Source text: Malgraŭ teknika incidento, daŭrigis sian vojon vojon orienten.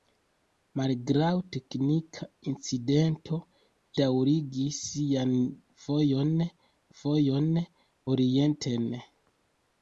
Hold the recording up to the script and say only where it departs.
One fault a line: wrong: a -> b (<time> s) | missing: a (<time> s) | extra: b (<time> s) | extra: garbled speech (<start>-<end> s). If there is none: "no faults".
no faults